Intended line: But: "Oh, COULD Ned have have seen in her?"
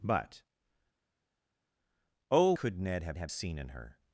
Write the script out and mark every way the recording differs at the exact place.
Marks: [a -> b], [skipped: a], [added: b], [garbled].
But: "Oh, COULD Ned have have seen in her?"